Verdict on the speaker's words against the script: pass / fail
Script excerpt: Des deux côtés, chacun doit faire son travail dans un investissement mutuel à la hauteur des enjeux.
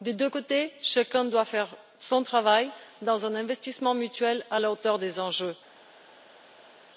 pass